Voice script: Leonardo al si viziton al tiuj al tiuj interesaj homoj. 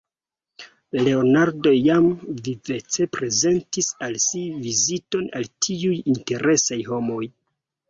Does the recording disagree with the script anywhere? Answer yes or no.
yes